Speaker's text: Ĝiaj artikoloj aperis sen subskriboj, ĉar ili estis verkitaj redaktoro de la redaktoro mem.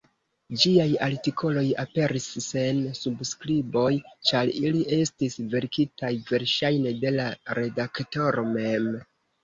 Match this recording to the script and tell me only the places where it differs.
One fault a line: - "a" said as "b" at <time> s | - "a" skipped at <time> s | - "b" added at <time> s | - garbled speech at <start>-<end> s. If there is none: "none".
- "redaktoro" said as "verŝajne" at 6.3 s